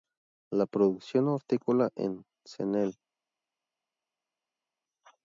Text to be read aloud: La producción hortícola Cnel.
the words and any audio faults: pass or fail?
fail